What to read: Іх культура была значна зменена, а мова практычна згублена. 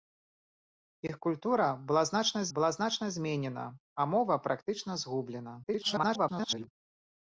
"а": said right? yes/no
yes